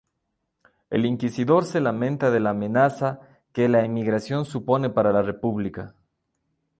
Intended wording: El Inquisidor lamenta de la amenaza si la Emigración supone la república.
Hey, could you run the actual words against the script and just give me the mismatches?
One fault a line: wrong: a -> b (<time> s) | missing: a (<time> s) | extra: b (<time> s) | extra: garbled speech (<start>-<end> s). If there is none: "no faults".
extra: se (1.6 s)
wrong: si -> que (3.5 s)
extra: para (4.9 s)